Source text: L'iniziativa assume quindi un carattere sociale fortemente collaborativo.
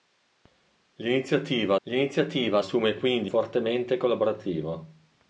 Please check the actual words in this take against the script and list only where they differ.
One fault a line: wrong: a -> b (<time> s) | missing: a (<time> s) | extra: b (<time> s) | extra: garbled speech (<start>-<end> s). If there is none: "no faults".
extra: l'iniziativa (1.8 s)
missing: un carattere sociale (3.3 s)